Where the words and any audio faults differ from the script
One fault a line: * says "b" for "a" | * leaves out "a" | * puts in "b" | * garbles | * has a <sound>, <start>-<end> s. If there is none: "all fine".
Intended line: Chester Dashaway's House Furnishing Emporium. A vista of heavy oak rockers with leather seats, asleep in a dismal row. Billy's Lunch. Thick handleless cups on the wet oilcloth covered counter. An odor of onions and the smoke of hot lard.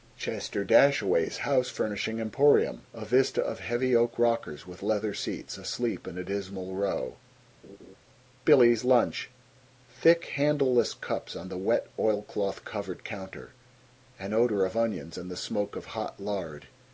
* has a laugh, 7.6-8.0 s